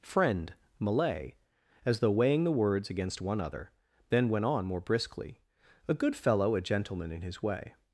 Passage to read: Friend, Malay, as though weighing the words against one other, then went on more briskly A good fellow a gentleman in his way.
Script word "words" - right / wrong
right